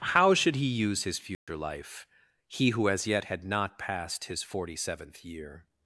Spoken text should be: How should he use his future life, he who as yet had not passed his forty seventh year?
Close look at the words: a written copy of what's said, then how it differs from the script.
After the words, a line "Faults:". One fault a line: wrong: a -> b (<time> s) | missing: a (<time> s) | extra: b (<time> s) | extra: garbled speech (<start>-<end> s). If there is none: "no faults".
How should he use his future life, he who as yet had not passed his forty seventh year?
Faults:
no faults